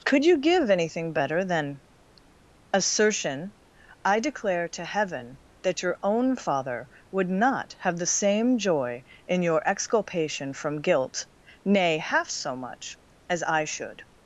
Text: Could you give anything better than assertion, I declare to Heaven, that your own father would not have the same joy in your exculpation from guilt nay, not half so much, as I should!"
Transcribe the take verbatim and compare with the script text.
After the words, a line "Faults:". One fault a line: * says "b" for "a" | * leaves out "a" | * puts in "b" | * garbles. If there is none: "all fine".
Could you give anything better than assertion, I declare to Heaven, that your own father would not have the same joy in your exculpation from guilt nay, half so much, as I should!"
Faults:
* leaves out "not"